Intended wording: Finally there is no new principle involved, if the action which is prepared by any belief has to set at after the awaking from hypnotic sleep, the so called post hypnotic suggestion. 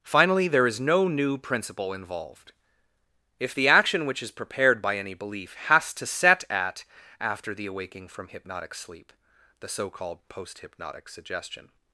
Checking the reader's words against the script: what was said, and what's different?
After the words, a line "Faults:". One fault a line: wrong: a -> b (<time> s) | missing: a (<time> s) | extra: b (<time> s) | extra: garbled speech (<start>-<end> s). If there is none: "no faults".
Finally there is no new principle involved, if the action which is prepared by any belief has to set at after the awaking from hypnotic sleep, the so called post hypnotic suggestion.
Faults:
no faults